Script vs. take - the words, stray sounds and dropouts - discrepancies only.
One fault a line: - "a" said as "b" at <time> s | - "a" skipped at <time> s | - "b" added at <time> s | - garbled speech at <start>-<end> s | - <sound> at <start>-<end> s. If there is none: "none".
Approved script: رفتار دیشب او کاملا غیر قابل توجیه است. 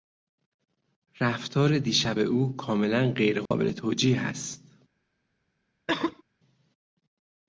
- dropout at 3.5-3.5 s
- cough at 5.9-6.2 s